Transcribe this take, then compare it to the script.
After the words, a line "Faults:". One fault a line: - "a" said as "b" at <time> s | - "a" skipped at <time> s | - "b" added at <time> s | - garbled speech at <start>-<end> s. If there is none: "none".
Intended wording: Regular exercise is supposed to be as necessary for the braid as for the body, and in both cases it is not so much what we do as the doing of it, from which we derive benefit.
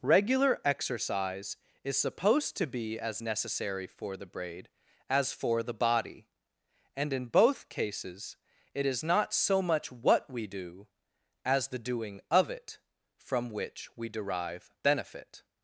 Regular exercise is supposed to be as necessary for the braid as for the body, and in both cases it is not so much what we do as the doing of it, from which we derive benefit.
Faults:
none